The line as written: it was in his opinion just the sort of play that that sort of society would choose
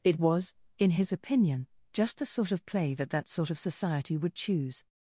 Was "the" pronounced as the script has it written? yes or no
yes